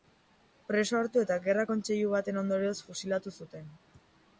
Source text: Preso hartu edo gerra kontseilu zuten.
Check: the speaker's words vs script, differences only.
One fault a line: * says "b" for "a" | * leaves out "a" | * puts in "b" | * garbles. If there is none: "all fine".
* says "eta" for "edo"
* puts in "baten ondorioz fusilatu"